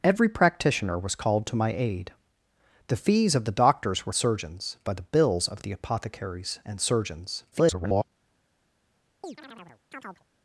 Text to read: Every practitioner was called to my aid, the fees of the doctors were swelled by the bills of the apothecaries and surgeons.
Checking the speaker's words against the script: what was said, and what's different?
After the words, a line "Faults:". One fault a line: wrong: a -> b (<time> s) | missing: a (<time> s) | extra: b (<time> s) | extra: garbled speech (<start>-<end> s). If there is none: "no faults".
Every practitioner was called to my aid, the fees of the doctors were surgeons by the bills of the apothecaries and surgeons. [garbled]
Faults:
wrong: swelled -> surgeons (4.1 s)
extra: garbled speech (7.5-8.0 s)